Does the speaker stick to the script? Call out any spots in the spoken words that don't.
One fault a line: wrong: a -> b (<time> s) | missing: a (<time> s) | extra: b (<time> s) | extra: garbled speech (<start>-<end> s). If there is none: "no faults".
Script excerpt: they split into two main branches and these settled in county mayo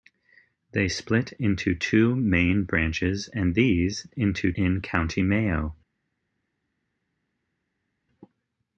wrong: settled -> into (4.1 s)